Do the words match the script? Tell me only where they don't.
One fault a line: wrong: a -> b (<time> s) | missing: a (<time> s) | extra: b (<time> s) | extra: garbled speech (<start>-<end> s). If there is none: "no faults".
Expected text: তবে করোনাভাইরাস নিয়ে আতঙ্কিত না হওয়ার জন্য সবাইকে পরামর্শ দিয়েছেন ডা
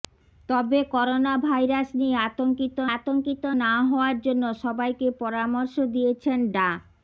extra: আতঙ্কিত (3.0 s)